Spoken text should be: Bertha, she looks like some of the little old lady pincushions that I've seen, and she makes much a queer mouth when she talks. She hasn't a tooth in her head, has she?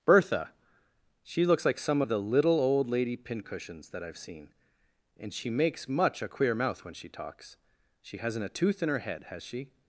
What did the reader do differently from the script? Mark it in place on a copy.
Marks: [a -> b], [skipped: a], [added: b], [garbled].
Bertha, she looks like some of the little old lady pincushions that I've seen, and she makes much a queer mouth when she talks. She hasn't a tooth in her head, has she?